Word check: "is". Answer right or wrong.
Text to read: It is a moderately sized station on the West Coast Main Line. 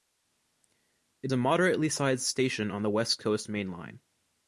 wrong